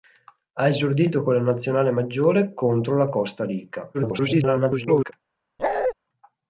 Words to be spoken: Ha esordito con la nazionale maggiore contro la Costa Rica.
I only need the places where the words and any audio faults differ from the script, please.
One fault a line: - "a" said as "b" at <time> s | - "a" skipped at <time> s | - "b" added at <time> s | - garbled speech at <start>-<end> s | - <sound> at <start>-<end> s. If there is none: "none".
- garbled speech at 3.9-5.1 s
- bark at 5.6-5.9 s